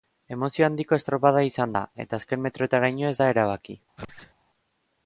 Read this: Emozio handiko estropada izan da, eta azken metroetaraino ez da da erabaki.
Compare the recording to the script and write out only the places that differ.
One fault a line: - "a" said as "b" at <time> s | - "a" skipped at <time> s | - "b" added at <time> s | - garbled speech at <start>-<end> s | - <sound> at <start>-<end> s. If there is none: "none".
- "da" skipped at 3.3 s
- sneeze at 4.0-4.3 s